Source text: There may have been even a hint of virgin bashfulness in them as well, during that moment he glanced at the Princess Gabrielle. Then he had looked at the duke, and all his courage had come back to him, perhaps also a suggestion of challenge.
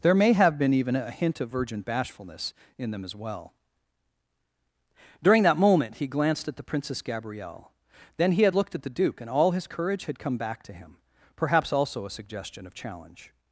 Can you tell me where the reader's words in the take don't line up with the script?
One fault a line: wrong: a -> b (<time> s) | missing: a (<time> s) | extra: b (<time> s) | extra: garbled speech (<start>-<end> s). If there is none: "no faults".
no faults